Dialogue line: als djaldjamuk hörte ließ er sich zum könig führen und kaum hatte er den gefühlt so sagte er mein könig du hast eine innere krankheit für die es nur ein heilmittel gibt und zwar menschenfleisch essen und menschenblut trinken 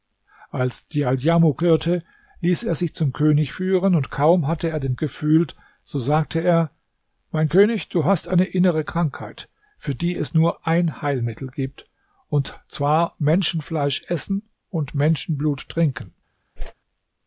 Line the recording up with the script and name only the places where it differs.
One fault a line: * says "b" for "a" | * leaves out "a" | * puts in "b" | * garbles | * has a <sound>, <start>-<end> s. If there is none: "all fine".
* has a whoosh, 16.6-16.7 s